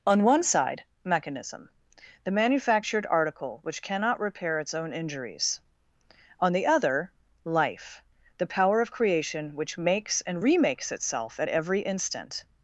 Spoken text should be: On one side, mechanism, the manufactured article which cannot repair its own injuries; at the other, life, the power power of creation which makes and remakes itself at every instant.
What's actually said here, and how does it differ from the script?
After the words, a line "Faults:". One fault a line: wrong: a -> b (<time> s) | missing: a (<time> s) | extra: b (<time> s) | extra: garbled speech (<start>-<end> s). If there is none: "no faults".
On one side, mechanism, the manufactured article which cannot repair its own injuries; on the other, life, the power of creation which makes and remakes itself at every instant.
Faults:
wrong: at -> on (6.4 s)
missing: power (8.8 s)